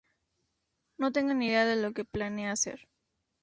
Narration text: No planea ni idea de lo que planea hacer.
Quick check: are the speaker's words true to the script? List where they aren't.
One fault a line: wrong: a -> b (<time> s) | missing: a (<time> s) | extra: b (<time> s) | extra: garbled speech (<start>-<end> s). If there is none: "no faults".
wrong: planea -> tengo (1.1 s)